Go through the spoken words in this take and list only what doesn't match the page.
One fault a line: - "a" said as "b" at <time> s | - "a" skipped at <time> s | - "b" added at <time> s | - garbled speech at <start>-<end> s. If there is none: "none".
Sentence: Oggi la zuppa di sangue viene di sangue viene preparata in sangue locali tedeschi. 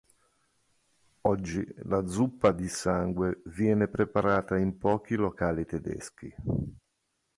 - "di sangue viene" skipped at 3.9 s
- "sangue" said as "pochi" at 4.8 s